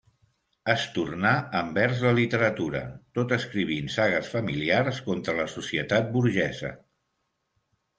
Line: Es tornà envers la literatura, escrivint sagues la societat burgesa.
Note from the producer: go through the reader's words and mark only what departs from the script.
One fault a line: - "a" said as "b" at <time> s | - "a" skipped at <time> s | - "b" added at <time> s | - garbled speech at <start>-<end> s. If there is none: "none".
- "tot" added at 3.2 s
- "familiars contra" added at 4.3 s